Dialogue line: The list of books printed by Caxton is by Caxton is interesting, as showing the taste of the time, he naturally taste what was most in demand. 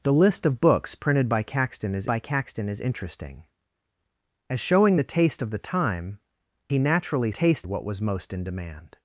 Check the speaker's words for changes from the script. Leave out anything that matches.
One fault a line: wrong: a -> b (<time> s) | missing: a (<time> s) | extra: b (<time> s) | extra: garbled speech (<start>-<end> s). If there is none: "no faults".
no faults